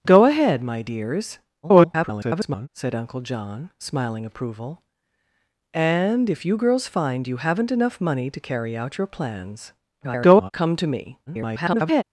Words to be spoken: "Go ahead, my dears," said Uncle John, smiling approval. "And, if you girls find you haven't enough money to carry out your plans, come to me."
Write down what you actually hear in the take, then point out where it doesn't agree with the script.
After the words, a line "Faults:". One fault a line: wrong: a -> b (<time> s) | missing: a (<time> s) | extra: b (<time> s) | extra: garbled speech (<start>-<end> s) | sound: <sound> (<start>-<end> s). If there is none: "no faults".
"Go ahead, my dears," [garbled] said Uncle John, smiling approval. "And, if you girls find you haven't enough money to carry out your plans, [garbled] come to me." [garbled]
Faults:
extra: garbled speech (1.6-2.7 s)
extra: garbled speech (10.0-10.5 s)
extra: garbled speech (11.3-12.0 s)